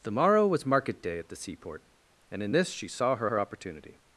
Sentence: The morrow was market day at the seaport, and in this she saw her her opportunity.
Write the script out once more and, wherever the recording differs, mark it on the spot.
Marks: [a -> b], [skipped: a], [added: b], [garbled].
The morrow was market day at the seaport, and in this she saw her her opportunity.